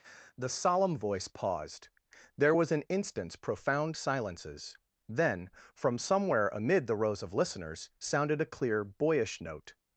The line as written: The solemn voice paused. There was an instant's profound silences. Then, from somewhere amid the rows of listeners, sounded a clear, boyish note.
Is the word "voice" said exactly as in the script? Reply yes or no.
yes